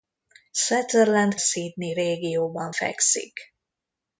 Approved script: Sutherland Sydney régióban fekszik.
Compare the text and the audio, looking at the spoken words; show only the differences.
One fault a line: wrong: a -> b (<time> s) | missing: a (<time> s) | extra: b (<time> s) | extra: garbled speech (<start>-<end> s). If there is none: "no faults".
no faults